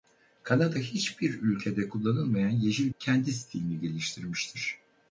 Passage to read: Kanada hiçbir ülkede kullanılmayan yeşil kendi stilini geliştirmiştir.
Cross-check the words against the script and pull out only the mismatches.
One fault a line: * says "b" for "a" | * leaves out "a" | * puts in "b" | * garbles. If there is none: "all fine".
all fine